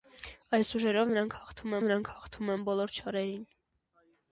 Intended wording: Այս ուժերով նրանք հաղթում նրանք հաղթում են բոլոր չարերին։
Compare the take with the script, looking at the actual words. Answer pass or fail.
pass